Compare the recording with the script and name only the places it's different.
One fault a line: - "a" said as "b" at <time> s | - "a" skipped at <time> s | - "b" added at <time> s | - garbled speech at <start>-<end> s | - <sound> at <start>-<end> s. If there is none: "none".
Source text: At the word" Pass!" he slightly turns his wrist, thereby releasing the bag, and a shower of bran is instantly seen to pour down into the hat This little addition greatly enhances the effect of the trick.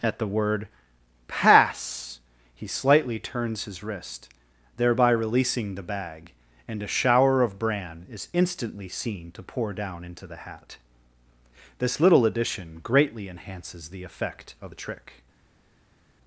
none